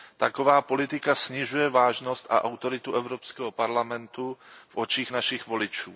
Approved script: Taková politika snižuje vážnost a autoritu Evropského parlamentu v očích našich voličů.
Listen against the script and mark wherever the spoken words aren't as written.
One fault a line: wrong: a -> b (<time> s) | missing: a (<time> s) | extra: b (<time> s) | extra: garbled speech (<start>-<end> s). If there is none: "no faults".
no faults